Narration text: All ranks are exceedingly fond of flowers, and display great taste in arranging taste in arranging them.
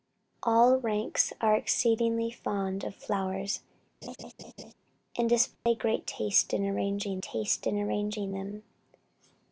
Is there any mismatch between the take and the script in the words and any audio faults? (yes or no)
yes